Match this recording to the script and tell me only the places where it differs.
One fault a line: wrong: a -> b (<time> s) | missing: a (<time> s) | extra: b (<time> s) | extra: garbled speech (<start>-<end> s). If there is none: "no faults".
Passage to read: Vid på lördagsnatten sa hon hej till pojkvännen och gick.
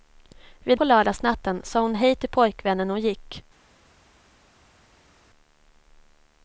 no faults